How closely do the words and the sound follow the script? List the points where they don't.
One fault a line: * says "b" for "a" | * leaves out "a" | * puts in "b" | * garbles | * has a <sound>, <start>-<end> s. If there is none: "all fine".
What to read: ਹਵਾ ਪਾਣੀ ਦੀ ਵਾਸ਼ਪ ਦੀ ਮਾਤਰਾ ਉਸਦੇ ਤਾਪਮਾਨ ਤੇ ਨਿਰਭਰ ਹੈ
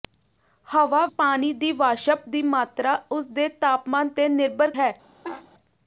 * has a laugh, 5.2-5.5 s